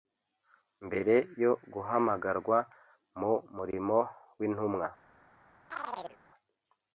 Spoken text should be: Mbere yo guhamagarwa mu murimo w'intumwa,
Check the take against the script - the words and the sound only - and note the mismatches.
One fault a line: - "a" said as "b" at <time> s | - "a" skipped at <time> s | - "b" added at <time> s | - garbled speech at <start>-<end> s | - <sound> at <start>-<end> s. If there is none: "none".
- chirp at 5.7-6.2 s